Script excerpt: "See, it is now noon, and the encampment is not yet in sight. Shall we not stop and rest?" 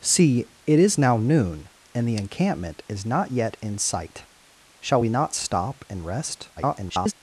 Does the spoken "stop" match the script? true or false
true